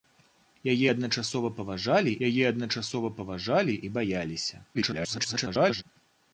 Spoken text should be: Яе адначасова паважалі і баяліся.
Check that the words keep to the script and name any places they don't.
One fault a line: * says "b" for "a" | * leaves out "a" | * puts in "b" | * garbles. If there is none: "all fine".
* puts in "яе адначасова паважалі"
* garbles